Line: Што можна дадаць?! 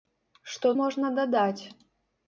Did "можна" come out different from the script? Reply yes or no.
no